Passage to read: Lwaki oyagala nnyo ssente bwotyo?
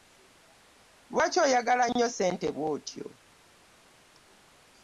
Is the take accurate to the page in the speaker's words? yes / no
yes